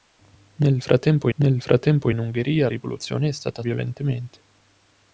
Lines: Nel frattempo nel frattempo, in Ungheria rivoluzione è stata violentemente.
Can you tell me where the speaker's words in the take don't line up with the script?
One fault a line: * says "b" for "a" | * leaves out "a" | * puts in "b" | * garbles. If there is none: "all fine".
all fine